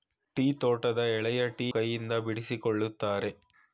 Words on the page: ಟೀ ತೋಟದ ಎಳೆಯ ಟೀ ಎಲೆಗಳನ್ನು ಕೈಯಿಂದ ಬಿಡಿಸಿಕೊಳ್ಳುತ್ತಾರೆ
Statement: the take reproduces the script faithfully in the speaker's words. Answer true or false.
false